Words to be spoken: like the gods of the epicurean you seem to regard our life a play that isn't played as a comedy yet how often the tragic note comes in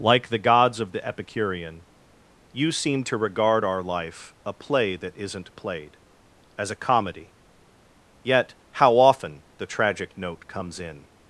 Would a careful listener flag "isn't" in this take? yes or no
no